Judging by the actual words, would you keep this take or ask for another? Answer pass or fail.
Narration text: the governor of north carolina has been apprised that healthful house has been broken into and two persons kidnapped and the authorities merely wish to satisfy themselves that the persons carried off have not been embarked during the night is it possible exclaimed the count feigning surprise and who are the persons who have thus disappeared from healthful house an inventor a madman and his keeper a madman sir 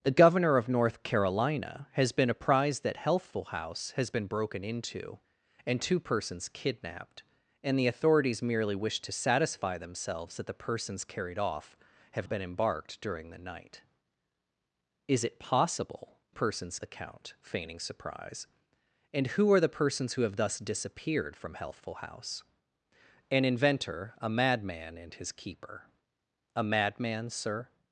fail